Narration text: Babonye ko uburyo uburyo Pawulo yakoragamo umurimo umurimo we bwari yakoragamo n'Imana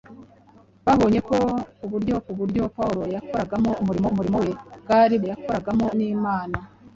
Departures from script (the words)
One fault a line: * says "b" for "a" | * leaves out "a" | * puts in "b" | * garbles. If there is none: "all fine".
all fine